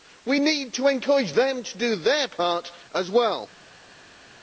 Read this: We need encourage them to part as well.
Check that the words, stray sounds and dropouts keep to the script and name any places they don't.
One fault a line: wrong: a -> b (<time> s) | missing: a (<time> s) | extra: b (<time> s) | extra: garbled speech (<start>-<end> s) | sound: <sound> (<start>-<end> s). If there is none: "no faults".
extra: to (0.7 s)
extra: do their (1.8 s)